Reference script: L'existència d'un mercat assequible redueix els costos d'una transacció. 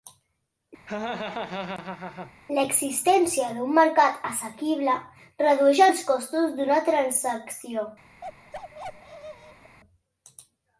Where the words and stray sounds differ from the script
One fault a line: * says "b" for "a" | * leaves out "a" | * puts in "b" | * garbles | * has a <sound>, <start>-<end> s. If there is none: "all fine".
* has a laugh, 0.9-2.3 s
* has a bark, 8.2-9.8 s